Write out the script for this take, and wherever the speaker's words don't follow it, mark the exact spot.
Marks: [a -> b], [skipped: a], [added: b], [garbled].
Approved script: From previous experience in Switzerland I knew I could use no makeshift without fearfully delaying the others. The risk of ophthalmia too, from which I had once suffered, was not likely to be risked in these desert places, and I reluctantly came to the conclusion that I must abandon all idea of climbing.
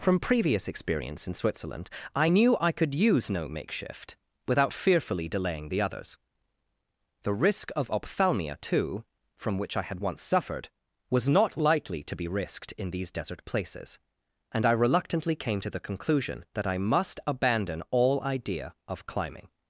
From previous experience in Switzerland I knew I could use no makeshift without fearfully delaying the others. The risk of ophthalmia too, from which I had once suffered, was not likely to be risked in these desert places, and I reluctantly came to the conclusion that I must abandon all idea of climbing.